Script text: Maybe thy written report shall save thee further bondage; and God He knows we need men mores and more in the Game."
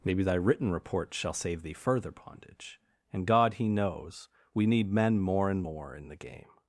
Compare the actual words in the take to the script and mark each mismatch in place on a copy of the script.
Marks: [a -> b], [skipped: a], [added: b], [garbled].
Maybe thy written report shall save thee further bondage; and God He knows we need men [mores -> more] and more in the Game."